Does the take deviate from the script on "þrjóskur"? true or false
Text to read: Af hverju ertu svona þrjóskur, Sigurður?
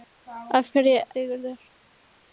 true